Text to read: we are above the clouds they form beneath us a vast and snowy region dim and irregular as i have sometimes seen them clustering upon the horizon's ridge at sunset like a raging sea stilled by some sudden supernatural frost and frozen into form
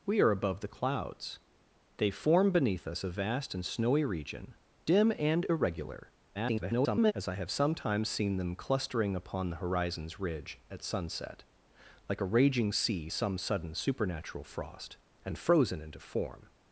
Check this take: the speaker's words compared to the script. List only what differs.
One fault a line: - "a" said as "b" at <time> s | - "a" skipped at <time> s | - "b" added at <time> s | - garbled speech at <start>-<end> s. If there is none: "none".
- garbled speech at 6.3-7.1 s
- "stilled by" skipped at 13.1 s